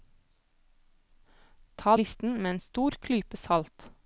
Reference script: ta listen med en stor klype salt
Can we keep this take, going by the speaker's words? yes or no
yes